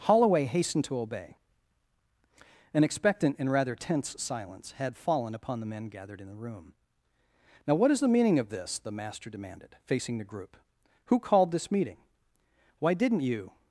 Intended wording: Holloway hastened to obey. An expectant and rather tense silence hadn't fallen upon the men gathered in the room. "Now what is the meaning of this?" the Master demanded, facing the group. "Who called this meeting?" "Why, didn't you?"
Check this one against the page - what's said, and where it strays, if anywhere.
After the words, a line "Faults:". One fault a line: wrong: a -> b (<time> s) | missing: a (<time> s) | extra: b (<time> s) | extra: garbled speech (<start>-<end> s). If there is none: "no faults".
Holloway hastened to obey. An expectant and rather tense silence had fallen upon the men gathered in the room. "Now what is the meaning of this?" the Master demanded, facing the group. "Who called this meeting?" "Why, didn't you?"
Faults:
wrong: hadn't -> had (4.7 s)